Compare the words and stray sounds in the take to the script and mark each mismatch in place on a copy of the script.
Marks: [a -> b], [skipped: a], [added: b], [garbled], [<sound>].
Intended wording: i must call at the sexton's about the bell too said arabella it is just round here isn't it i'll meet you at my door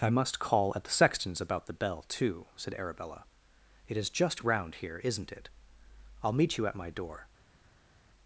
i must call at the sexton's about the bell too said arabella it is just round here isn't it i'll meet you at my door